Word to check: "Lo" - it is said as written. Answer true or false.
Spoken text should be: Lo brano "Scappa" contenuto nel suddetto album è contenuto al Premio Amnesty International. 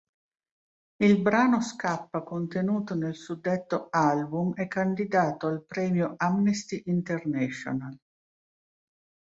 false